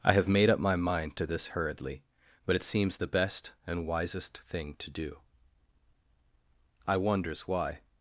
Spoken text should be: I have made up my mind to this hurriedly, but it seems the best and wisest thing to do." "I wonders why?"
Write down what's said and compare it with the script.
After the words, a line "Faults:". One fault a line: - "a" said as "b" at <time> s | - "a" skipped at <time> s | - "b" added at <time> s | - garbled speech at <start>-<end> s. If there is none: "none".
I have made up my mind to this hurriedly, but it seems the best and wisest thing to do." "I wonders why?"
Faults:
none